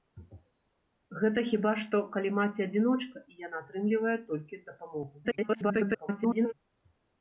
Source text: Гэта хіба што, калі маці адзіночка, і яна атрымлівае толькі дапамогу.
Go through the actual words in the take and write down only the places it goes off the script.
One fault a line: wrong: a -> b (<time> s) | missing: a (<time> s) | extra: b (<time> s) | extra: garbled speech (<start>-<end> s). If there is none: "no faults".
extra: garbled speech (5.2-6.5 s)